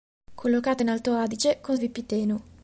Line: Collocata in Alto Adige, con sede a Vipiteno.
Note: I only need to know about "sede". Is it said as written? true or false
false